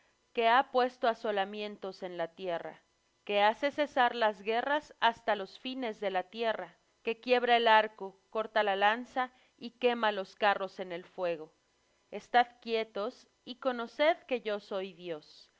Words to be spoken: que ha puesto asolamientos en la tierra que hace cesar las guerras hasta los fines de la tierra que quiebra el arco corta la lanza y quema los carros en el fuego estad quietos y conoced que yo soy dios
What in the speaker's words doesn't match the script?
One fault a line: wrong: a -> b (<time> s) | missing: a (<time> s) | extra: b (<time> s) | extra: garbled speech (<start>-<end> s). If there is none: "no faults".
no faults